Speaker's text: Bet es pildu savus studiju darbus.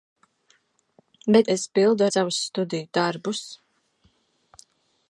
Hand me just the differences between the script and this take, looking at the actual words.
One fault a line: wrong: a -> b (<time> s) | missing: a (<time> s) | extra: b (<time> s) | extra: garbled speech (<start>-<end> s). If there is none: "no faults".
no faults